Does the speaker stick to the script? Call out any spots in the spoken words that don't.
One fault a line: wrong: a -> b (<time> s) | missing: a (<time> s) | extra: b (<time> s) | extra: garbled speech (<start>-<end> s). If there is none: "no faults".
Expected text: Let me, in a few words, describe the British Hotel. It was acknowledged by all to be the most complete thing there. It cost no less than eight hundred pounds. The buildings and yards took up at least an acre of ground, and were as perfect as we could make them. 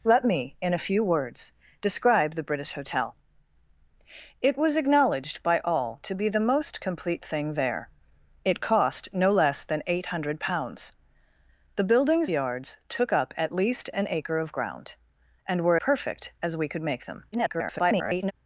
missing: and (12.3 s)
missing: as (15.8 s)
extra: garbled speech (17.3-18.3 s)